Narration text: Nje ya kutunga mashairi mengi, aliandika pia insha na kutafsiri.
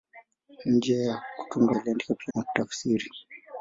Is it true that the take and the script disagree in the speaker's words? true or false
true